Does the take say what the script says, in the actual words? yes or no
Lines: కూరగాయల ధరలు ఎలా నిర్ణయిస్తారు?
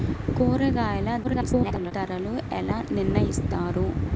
no